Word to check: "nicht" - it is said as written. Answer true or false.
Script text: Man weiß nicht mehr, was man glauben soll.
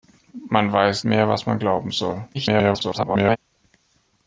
false